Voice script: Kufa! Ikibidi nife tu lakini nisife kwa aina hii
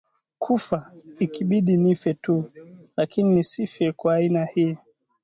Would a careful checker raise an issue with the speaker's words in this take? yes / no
no